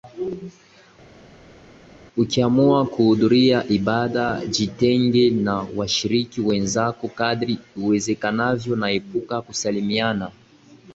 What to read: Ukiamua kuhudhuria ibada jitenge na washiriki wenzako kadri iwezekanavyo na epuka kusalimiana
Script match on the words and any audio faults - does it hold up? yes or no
yes